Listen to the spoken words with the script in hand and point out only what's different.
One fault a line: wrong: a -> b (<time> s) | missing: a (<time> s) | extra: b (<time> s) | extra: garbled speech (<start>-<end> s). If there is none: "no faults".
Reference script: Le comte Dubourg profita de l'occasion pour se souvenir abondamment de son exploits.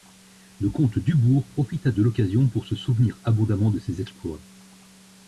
wrong: son -> ses (3.8 s)